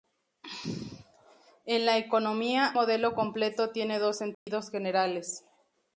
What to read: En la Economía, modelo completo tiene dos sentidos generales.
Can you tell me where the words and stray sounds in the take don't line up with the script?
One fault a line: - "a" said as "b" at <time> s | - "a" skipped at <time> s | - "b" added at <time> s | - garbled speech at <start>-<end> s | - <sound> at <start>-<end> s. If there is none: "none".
- dropout at 4.3-4.5 s